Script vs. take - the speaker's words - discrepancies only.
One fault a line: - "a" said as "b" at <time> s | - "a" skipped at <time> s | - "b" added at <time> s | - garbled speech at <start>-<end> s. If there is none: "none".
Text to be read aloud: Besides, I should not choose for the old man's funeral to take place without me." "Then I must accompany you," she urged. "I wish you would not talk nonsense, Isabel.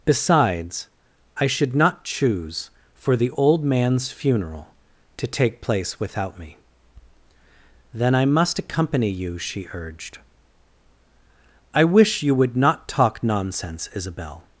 none